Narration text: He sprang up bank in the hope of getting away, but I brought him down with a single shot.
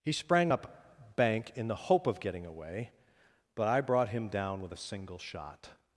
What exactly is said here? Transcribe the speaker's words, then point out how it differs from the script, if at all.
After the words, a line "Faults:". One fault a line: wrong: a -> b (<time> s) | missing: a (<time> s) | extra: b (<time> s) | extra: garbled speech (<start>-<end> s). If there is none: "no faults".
He sprang up bank in the hope of getting away, but I brought him down with a single shot.
Faults:
no faults